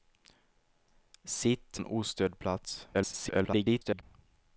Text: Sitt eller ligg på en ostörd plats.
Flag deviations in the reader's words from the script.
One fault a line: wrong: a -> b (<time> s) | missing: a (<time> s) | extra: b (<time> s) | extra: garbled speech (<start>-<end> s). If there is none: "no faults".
missing: eller ligg på (1.8 s)
extra: garbled speech (2.9-4.0 s)